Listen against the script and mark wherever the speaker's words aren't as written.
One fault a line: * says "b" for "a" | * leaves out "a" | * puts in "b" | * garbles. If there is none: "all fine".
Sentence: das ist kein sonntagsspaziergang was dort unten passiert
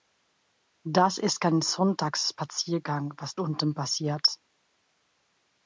* leaves out "dort"